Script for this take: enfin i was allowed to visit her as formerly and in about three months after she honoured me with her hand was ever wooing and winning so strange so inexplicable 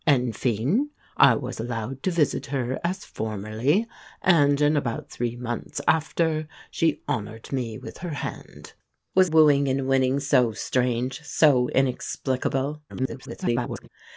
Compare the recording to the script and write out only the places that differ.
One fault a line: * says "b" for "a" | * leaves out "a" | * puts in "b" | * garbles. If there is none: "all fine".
* leaves out "ever"
* garbles